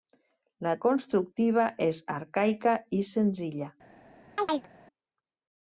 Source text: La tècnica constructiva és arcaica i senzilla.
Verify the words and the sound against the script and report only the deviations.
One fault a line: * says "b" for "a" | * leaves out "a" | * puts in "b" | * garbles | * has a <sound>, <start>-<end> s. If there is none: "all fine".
* leaves out "tècnica"
* has a chirp, 4.4-4.7 s